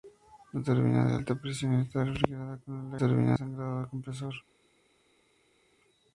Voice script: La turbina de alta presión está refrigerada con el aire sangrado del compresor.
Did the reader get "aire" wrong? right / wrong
wrong